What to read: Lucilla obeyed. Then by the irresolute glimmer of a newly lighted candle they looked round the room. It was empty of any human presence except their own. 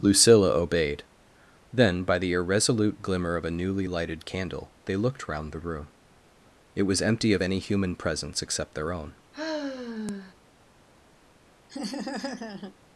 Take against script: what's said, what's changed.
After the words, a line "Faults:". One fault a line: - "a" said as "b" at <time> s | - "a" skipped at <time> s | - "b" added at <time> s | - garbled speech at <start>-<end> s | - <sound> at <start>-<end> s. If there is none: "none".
Lucilla obeyed. Then by the irresolute glimmer of a newly lighted candle they looked round the room. It was empty of any human presence except their own.
Faults:
- sigh at 9.3-10.3 s
- laugh at 11.7-12.8 s